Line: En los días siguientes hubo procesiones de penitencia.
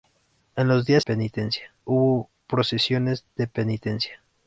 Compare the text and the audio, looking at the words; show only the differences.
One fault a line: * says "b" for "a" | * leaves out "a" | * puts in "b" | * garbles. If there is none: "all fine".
* says "penitencia" for "siguientes"